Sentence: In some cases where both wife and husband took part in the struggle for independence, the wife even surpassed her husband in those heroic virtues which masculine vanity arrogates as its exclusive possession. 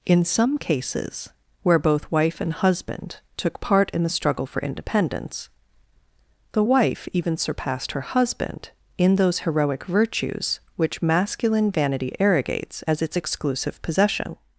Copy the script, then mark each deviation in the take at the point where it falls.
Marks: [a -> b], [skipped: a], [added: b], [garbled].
In some cases where both wife and husband took part in the struggle for independence, the wife even surpassed her husband in those heroic virtues which masculine vanity arrogates as its exclusive possession.